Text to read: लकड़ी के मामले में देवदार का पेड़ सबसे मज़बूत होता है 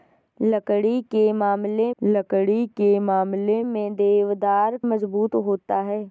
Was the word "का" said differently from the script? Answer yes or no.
yes